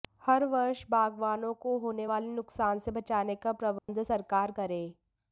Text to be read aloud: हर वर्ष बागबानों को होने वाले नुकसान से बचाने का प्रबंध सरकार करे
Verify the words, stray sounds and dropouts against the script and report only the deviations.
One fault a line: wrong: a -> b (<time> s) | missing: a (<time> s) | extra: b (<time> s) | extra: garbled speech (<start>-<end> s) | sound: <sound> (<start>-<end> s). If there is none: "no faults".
sound: dropout (3.8-3.9 s)